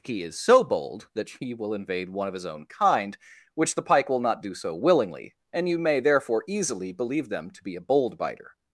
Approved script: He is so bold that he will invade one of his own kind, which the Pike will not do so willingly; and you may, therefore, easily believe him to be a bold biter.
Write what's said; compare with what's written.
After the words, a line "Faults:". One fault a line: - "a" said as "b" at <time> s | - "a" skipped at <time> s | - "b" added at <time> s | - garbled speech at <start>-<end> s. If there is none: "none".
He is so bold that he will invade one of his own kind, which the Pike will not do so willingly; and you may, therefore, easily believe them to be a bold biter.
Faults:
- "him" said as "them" at 7.3 s